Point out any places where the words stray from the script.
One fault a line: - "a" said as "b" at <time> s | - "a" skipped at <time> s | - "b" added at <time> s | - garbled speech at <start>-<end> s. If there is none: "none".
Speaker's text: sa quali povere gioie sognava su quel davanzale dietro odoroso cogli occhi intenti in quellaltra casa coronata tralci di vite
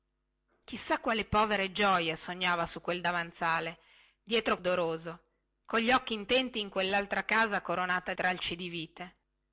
none